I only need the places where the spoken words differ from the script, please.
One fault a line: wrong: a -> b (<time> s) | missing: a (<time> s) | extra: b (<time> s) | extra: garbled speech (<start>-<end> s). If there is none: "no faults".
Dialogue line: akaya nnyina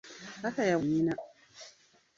no faults